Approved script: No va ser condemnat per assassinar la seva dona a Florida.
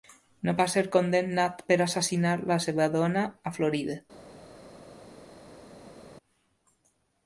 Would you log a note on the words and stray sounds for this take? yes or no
no